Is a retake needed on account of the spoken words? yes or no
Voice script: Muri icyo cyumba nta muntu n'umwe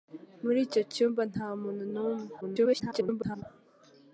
yes